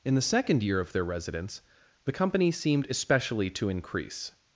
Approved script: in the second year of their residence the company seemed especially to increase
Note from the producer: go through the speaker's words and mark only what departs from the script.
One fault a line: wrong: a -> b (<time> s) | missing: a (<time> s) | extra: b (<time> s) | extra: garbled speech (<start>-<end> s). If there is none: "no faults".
no faults